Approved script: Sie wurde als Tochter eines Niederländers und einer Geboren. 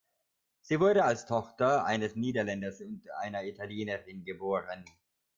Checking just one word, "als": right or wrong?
right